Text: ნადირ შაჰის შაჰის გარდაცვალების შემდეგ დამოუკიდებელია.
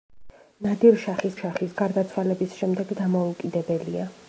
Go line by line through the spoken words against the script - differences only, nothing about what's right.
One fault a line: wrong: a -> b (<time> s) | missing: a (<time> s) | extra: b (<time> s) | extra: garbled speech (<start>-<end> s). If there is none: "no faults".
no faults